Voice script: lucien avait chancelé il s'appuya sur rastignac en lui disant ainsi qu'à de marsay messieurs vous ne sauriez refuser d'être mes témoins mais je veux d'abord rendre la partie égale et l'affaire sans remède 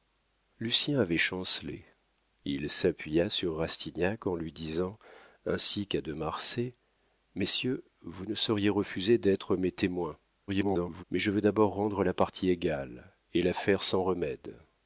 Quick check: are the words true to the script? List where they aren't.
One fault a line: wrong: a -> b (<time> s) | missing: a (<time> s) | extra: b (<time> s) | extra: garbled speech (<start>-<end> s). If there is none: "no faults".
extra: garbled speech (10.5-11.0 s)